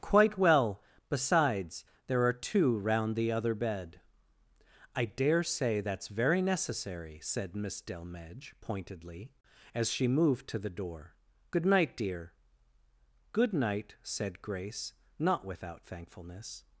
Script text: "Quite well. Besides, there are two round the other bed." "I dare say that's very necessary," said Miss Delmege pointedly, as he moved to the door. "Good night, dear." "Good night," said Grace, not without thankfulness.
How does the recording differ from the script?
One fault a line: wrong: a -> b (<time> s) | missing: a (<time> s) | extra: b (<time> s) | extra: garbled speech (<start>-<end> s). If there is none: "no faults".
wrong: he -> she (9.9 s)